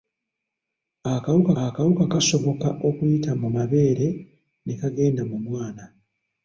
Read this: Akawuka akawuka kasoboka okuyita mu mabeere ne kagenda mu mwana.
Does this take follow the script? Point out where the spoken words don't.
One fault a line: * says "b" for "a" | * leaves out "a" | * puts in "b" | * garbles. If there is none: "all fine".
all fine